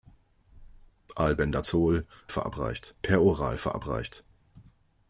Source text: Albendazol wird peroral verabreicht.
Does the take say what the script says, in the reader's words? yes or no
no